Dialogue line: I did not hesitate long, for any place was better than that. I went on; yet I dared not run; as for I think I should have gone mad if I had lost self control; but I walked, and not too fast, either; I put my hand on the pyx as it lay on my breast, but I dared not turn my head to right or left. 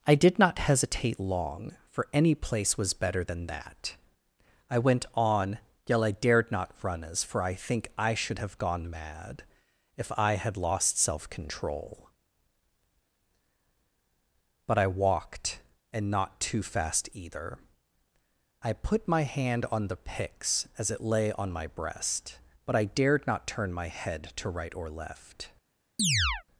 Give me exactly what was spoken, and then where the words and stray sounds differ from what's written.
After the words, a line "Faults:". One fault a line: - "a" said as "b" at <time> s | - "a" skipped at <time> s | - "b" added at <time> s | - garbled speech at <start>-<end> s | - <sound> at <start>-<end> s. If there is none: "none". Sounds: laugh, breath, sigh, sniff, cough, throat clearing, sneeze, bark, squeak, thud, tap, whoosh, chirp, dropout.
I did not hesitate long, for any place was better than that. I went on; yet I dared not run; as for I think I should have gone mad if I had lost self control; but I walked, and not too fast, either; I put my hand on the pyx as it lay on my breast, but I dared not turn my head to right or left.
Faults:
- chirp at 26.0-26.4 s